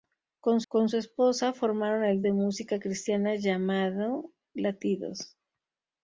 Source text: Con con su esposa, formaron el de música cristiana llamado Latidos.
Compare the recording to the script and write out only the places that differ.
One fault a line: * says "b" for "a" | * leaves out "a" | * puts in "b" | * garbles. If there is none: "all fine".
all fine